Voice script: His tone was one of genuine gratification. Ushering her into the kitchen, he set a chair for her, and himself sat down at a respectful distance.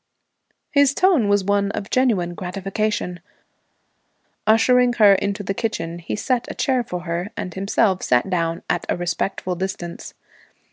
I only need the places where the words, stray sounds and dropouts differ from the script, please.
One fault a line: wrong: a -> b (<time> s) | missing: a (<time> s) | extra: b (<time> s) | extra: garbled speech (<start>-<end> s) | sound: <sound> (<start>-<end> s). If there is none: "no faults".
no faults